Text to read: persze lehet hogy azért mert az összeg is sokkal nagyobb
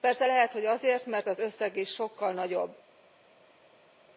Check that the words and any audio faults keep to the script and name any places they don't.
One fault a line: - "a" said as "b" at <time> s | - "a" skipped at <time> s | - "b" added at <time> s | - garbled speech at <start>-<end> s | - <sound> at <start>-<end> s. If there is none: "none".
none